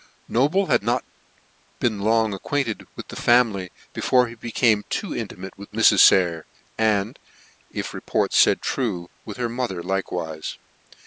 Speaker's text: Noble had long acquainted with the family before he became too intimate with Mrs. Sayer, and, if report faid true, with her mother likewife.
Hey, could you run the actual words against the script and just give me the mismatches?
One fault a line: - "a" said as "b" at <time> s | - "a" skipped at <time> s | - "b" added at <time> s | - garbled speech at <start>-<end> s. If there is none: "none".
- "not been" added at 0.8 s